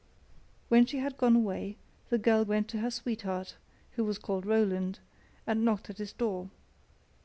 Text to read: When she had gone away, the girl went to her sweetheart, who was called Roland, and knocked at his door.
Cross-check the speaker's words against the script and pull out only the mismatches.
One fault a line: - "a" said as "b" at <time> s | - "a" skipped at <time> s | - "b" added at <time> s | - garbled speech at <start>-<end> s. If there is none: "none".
none